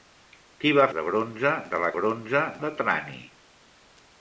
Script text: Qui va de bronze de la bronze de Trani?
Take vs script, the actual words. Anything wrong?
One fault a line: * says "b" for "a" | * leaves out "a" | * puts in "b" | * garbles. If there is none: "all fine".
all fine